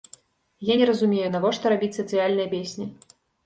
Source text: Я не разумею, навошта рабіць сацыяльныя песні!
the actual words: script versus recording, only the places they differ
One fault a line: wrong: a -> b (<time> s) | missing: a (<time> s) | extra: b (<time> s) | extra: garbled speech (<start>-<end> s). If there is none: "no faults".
no faults